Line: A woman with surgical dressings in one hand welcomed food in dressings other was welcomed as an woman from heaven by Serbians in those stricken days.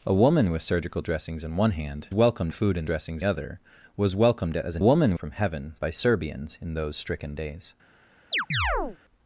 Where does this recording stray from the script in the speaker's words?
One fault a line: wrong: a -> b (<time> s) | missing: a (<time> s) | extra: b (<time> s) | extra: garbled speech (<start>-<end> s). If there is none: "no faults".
no faults